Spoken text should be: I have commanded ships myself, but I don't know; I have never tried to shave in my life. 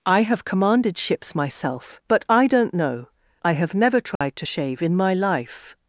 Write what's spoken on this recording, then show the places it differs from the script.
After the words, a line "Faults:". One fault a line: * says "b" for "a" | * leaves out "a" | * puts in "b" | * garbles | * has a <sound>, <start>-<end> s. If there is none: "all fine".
I have commanded ships myself, but I don't know; I have never tried to shave in my life.
Faults:
* has a dropout, 4.2-4.2 s